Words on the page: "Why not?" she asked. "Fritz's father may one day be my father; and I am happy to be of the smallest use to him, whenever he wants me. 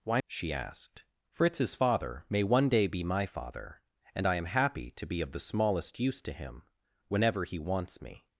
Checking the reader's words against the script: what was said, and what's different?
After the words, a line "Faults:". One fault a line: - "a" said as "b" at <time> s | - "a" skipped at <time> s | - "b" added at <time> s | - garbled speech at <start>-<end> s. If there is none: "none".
"Why?" she asked. "Fritz's father may one day be my father; and I am happy to be of the smallest use to him, whenever he wants me.
Faults:
- "not" skipped at 0.2 s